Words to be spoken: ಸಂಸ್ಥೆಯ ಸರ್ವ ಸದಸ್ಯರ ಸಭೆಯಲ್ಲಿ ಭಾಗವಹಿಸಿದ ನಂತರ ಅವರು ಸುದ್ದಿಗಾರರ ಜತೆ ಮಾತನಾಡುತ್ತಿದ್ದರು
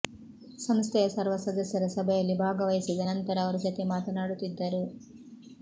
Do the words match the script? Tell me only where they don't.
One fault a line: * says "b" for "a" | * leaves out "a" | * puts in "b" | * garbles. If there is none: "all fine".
* leaves out "ಸುದ್ದಿಗಾರರ"